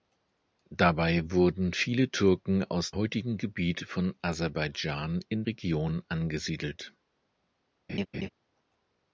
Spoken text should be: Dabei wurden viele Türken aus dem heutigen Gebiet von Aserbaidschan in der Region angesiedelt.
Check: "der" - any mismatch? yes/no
yes